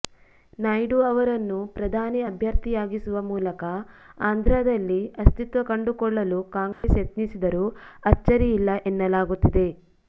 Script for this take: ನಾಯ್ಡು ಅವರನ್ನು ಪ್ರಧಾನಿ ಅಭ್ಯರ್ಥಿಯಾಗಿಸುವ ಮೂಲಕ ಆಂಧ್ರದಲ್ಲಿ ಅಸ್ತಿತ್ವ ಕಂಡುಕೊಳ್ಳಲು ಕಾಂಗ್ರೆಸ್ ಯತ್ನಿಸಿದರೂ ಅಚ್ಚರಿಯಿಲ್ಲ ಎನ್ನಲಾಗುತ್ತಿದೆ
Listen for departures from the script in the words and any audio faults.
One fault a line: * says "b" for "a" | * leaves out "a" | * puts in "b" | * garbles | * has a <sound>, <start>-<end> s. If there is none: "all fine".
* has a dropout, 6.7-6.8 s